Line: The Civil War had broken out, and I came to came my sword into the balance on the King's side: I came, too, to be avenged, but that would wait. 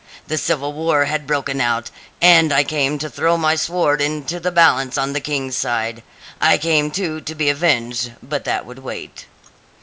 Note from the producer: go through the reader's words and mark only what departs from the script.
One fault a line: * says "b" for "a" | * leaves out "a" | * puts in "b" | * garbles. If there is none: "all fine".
* says "throw" for "came"